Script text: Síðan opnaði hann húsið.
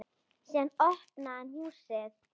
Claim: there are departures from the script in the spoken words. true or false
false